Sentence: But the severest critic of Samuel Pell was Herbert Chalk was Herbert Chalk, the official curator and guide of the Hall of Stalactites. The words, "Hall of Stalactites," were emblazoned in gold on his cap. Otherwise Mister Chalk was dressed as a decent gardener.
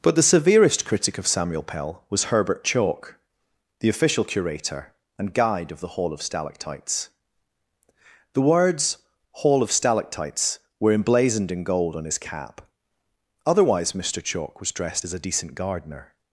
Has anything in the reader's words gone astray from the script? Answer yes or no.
yes